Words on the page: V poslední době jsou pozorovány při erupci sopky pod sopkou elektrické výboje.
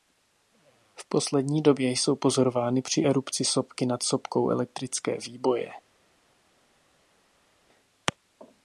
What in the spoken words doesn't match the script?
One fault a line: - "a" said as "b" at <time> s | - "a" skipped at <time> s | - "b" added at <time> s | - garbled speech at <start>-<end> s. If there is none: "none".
- "pod" said as "nad" at 3.9 s